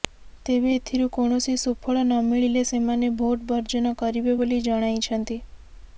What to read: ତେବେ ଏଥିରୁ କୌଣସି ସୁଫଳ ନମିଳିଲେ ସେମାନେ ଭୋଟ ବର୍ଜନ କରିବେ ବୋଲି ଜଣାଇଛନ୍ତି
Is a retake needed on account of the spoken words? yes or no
no